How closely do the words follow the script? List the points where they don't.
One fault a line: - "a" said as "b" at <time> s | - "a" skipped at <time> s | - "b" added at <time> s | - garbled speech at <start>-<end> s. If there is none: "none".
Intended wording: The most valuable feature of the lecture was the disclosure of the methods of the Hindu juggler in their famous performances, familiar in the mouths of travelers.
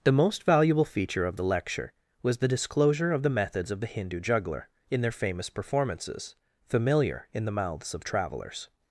none